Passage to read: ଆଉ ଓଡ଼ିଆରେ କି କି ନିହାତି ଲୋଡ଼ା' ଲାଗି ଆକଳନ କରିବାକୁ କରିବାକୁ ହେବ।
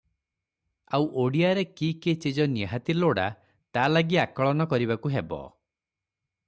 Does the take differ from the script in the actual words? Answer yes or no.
yes